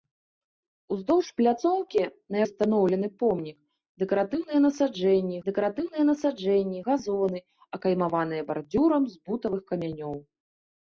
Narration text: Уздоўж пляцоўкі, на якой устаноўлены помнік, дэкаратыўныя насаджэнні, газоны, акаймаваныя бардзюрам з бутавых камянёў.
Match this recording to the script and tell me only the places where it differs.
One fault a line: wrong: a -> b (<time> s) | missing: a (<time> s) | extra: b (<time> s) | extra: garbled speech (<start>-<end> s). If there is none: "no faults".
missing: якой (2.4 s)
extra: дэкаратыўныя насаджэнні (5.5 s)